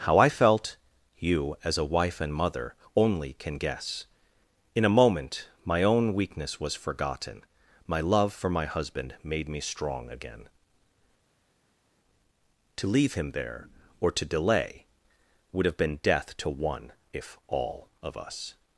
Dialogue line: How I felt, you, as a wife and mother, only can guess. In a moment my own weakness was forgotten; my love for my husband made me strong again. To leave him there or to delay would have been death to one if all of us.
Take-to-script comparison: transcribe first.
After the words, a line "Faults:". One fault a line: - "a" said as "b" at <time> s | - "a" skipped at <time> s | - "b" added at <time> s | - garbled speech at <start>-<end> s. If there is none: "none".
How I felt, you, as a wife and mother, only can guess. In a moment my own weakness was forgotten; my love for my husband made me strong again. To leave him there or to delay would have been death to one if all of us.
Faults:
none